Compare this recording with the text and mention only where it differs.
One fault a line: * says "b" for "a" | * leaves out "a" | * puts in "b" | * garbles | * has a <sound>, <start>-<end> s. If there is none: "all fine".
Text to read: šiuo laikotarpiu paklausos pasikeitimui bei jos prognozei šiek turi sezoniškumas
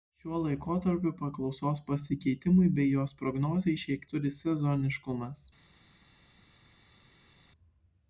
all fine